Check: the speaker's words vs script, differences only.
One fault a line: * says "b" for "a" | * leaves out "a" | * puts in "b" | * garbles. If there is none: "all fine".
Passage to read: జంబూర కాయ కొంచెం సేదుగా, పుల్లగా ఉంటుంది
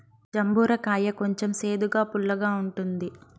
all fine